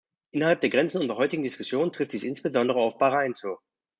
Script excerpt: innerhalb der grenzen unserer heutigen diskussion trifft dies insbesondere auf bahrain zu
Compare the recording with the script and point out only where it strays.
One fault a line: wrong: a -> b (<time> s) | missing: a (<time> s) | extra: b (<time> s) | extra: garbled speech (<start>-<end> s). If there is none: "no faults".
no faults